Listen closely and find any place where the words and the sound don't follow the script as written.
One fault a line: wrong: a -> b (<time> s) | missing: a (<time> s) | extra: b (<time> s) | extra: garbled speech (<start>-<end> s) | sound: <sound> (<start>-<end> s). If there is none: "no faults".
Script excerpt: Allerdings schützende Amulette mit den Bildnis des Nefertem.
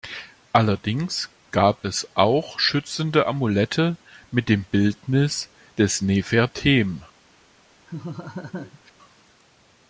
extra: gab es auch (1.5 s)
wrong: den -> dem (4.5 s)
sound: laugh (7.9-8.9 s)